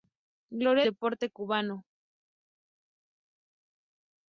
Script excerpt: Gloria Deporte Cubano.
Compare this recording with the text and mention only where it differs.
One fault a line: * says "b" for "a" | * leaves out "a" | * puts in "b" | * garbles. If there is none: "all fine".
all fine